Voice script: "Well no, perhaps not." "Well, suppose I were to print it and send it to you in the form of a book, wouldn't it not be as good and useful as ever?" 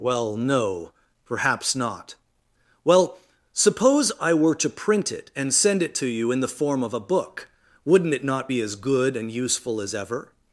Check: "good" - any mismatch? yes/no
no